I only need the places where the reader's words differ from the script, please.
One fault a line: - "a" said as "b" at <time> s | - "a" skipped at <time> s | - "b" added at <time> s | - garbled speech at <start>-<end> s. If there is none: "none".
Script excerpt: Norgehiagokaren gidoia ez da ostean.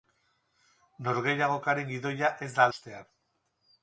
none